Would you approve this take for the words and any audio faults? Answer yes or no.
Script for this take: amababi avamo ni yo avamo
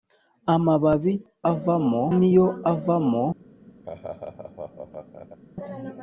no